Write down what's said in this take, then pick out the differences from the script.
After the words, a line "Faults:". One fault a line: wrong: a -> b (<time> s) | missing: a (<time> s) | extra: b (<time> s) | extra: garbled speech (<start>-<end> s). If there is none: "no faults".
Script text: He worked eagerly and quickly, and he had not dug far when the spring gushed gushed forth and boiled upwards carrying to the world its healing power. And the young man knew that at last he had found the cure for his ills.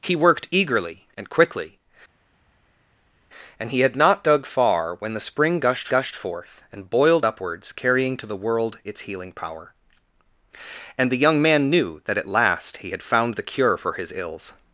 He worked eagerly and quickly, and he had not dug far when the spring gushed gushed forth and boiled upwards carrying to the world its healing power. And the young man knew that at last he had found the cure for his ills.
Faults:
no faults